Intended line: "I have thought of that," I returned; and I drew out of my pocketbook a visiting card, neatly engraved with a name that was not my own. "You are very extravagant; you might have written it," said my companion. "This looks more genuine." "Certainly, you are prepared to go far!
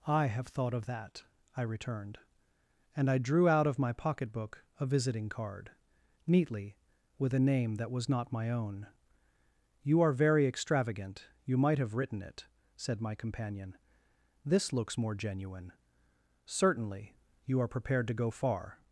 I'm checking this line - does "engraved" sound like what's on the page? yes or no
no